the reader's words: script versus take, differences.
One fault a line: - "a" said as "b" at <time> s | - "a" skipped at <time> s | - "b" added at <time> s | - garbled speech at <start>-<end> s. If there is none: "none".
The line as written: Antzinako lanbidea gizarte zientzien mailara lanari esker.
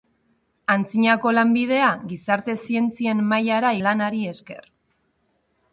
none